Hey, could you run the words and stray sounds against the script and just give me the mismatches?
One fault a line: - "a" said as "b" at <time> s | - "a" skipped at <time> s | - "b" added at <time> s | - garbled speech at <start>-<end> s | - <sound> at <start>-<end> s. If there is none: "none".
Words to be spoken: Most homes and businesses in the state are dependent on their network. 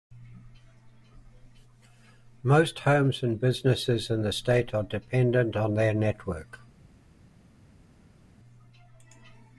none